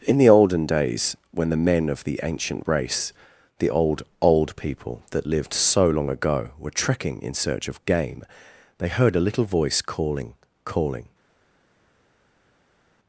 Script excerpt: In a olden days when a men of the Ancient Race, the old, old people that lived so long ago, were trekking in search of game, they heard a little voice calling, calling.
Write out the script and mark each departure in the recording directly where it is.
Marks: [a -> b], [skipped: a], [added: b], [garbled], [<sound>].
In [a -> the] olden days when [a -> the] men of the Ancient Race, the old, old people that lived so long ago, were trekking in search of game, they heard a little voice calling, calling.